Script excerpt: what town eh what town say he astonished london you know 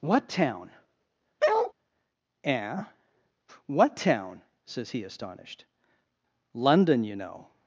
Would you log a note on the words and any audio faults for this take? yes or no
yes